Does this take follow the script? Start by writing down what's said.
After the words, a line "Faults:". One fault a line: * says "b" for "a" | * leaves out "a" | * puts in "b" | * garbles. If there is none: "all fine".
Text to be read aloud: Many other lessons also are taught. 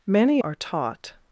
Many are taught.
Faults:
* leaves out "other lessons also"